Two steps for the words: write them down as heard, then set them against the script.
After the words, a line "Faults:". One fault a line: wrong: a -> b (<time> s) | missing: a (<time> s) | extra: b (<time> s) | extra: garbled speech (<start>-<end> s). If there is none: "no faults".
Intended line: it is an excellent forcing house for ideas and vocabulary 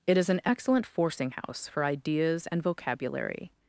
it is an excellent forcing house for ideas and vocabulary
Faults:
no faults